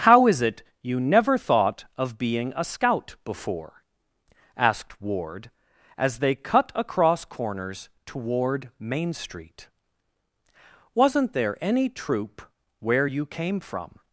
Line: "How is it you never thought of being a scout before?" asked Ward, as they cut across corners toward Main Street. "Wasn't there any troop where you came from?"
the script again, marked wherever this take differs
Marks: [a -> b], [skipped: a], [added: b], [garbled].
"How is it you never thought of being a scout before?" asked Ward, as they cut across corners toward Main Street. "Wasn't there any troop where you came from?"